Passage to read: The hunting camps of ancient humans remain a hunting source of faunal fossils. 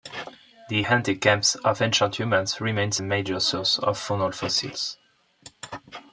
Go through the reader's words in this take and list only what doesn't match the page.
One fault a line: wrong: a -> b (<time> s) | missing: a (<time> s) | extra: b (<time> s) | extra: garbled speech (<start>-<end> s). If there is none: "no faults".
wrong: hunting -> major (3.0 s)